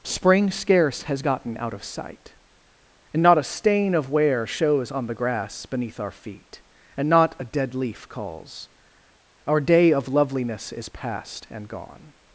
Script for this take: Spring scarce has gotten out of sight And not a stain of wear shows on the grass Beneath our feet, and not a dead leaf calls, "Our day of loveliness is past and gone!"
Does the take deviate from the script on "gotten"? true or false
false